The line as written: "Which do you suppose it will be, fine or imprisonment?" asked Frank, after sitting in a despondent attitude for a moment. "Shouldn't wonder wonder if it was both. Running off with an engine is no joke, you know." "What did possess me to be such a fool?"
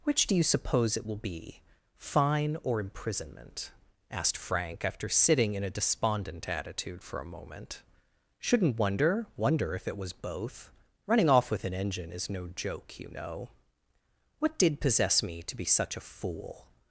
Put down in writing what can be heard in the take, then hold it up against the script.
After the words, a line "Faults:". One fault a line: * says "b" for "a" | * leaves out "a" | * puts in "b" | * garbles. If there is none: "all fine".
"Which do you suppose it will be, fine or imprisonment?" asked Frank, after sitting in a despondent attitude for a moment. "Shouldn't wonder wonder if it was both. Running off with an engine is no joke, you know." "What did possess me to be such a fool?"
Faults:
all fine